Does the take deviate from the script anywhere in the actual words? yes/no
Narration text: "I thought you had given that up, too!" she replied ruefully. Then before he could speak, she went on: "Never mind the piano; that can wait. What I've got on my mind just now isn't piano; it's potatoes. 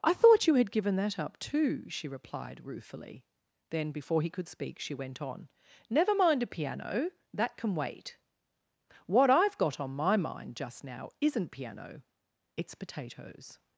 yes